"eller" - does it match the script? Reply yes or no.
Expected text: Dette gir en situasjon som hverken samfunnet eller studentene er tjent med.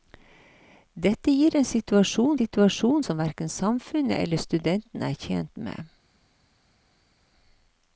yes